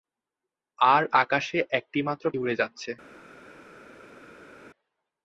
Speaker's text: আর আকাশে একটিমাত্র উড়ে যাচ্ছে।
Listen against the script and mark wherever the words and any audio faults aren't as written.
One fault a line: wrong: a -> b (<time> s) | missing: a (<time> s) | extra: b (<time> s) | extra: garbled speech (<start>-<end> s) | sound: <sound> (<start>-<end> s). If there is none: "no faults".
no faults